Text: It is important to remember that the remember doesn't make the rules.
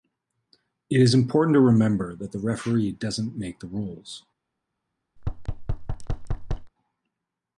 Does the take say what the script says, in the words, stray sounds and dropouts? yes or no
no